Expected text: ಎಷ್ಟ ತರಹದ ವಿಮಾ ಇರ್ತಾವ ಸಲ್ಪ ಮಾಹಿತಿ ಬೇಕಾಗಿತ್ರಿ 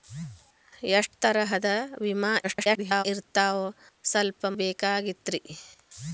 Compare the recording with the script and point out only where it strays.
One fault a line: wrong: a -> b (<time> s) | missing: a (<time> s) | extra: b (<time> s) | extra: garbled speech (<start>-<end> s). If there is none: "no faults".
extra: garbled speech (2.4-3.0 s)
missing: ಮಾಹಿತಿ (4.5 s)